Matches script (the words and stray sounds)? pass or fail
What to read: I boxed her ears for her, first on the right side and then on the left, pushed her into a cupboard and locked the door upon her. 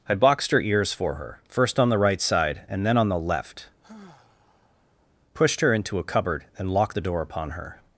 fail